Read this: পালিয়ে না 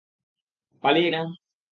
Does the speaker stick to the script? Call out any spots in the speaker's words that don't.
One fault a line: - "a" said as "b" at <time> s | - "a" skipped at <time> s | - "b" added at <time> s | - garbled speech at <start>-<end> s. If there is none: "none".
none